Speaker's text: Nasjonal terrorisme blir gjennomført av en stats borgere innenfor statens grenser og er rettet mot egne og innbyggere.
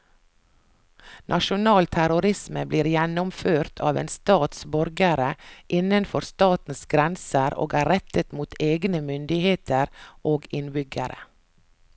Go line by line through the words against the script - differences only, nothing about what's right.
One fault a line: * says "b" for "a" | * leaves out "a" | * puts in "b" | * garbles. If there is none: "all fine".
* puts in "myndigheter"